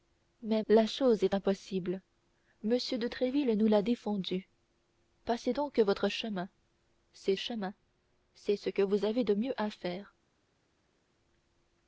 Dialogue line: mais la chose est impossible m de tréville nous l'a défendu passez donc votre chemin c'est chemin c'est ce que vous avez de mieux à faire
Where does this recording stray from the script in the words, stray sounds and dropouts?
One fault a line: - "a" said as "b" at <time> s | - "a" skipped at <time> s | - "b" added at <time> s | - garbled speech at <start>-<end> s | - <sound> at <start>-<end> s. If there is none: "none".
none